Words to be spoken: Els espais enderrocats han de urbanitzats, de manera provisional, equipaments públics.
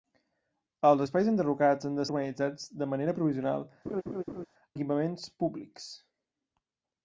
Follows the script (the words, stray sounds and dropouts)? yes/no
no